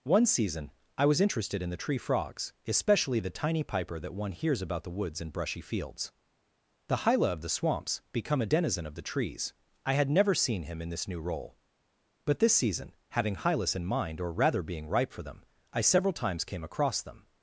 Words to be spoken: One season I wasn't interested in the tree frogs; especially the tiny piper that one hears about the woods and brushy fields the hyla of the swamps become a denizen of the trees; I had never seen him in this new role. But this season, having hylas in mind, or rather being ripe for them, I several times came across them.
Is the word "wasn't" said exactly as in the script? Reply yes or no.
no